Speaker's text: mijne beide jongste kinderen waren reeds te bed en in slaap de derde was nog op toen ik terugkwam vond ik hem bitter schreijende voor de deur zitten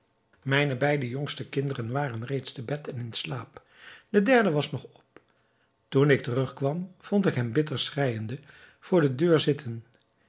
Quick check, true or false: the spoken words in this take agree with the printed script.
true